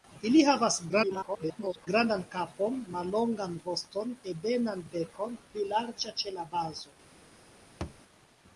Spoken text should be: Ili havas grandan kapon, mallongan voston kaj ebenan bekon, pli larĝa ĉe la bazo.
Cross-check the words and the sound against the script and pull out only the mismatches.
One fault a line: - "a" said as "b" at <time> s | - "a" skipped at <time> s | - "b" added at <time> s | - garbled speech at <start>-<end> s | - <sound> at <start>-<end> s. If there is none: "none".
- garbled speech at 0.9-1.9 s
- "kaj" skipped at 4.2 s
- thud at 7.8-8.0 s